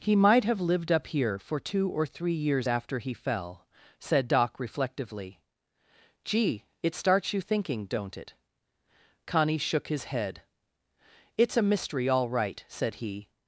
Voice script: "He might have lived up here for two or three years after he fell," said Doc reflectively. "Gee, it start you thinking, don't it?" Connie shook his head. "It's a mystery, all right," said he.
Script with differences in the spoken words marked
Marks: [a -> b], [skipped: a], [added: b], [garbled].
"He might have lived up here for two or three years after he fell," said Doc reflectively. "Gee, it [start -> starts] you thinking, don't it?" Connie shook his head. "It's a mystery, all right," said he.